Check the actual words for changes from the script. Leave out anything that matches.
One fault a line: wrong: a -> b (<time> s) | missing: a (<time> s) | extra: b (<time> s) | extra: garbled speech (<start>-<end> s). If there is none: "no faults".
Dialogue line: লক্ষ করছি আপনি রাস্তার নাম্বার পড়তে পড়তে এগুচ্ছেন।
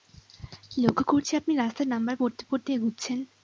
no faults